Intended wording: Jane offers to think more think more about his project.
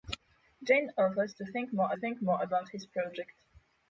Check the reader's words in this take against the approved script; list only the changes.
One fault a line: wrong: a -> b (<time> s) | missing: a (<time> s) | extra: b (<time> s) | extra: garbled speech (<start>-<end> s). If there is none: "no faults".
no faults